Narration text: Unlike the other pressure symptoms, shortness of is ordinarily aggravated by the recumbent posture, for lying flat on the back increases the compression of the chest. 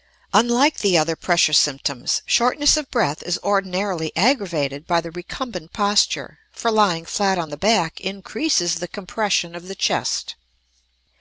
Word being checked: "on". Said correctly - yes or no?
yes